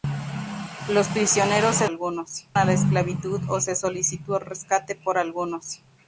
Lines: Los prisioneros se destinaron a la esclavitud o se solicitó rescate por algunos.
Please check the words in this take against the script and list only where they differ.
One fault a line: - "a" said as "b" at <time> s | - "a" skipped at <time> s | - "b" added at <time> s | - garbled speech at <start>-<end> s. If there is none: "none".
- "destinaron" said as "algunos" at 1.8 s